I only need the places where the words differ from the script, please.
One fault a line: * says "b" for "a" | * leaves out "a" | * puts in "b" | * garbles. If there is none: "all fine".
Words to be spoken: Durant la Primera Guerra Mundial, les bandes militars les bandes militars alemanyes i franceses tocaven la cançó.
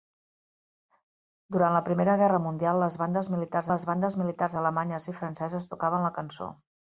all fine